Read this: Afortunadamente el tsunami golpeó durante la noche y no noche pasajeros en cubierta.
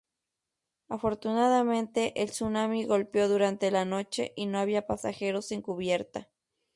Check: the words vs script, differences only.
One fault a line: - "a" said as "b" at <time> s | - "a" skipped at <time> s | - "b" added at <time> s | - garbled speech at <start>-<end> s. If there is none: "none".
- "noche" said as "había" at 4.6 s